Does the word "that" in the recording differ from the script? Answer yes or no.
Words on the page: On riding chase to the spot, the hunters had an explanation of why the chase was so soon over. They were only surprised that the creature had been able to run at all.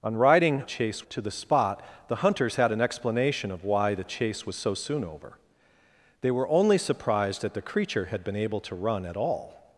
no